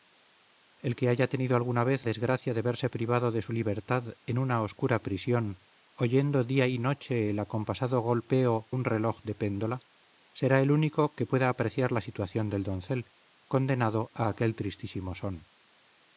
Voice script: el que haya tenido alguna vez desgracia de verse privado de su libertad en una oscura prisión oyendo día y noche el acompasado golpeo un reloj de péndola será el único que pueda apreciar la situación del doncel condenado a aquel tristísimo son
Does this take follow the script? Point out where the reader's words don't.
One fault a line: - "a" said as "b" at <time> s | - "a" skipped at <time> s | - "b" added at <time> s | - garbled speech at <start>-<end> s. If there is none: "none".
none